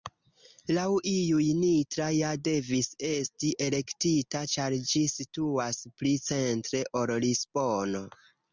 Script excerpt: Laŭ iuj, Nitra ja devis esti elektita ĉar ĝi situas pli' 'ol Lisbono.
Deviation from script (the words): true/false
true